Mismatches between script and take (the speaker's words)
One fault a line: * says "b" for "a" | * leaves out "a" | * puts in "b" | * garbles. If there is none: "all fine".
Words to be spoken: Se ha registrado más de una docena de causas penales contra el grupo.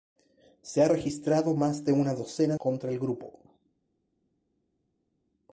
* leaves out "de causas penales"